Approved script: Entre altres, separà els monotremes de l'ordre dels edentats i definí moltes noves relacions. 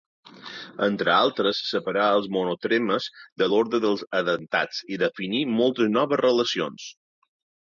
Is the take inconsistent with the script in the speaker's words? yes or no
no